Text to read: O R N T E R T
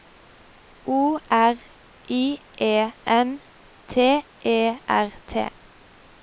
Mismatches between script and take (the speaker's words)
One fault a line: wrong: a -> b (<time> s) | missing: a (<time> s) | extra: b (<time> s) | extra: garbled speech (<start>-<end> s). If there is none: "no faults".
extra: I E (2.1 s)